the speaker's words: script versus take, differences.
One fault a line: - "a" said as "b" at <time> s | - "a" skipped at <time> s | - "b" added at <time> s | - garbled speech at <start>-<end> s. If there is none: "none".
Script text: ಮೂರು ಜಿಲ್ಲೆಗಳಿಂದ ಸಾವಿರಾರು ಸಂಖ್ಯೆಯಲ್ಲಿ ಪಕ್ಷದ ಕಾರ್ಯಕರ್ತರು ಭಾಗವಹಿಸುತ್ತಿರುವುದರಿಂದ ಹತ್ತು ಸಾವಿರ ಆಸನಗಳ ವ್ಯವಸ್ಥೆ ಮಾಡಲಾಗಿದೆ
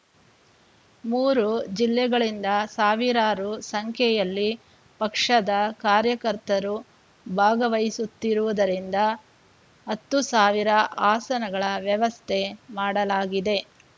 none